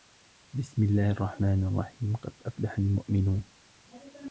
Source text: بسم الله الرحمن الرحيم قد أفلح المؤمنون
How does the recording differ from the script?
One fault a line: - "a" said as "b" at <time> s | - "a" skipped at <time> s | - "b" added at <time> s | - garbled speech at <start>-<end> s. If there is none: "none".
none